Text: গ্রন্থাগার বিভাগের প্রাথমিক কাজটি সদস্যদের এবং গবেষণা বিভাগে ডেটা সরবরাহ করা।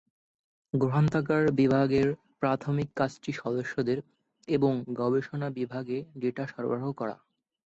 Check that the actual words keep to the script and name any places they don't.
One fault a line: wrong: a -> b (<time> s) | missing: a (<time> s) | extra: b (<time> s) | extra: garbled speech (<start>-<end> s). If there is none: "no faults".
no faults